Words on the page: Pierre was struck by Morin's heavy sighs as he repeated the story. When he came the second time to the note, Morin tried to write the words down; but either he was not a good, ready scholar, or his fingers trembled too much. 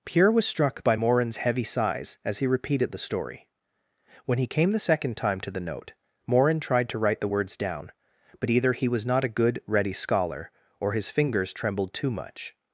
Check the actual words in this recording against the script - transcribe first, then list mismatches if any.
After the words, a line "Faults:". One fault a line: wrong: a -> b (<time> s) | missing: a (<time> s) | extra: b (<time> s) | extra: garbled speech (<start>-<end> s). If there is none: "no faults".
Pierre was struck by Morin's heavy sighs as he repeated the story. When he came the second time to the note, Morin tried to write the words down; but either he was not a good, ready scholar, or his fingers trembled too much.
Faults:
no faults